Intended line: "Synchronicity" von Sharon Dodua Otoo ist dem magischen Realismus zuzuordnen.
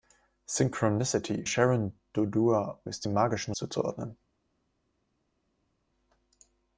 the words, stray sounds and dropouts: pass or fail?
fail